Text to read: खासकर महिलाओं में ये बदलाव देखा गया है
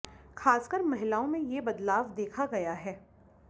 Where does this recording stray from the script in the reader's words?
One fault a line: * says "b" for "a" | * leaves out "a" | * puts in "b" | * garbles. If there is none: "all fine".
all fine